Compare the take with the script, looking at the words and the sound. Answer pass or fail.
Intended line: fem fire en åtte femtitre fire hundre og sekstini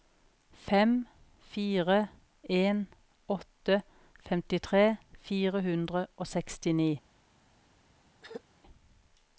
fail